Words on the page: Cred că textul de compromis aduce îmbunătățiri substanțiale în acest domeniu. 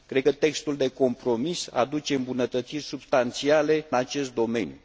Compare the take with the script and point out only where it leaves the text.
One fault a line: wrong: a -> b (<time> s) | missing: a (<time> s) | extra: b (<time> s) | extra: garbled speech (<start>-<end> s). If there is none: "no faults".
missing: în (3.9 s)